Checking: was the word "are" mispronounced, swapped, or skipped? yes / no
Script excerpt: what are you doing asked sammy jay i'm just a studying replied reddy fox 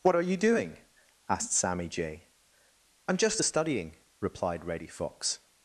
no